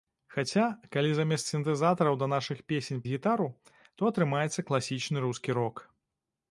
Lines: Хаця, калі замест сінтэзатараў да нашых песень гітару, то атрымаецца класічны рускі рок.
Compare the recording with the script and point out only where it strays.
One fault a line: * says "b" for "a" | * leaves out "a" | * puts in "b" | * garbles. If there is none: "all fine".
all fine